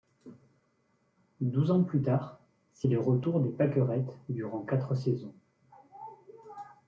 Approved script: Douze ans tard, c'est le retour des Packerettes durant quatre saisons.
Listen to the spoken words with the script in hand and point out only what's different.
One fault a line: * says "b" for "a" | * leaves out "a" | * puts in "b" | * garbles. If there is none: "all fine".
* puts in "plus"